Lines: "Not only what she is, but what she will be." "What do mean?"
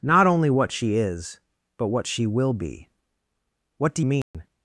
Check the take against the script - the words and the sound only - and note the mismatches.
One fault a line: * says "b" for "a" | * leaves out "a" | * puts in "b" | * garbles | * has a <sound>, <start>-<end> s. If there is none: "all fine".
* has a dropout, 4.2-4.3 s